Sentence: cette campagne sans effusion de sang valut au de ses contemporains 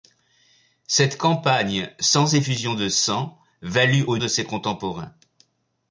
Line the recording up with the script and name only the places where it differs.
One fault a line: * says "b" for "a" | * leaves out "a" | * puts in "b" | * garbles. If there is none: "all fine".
all fine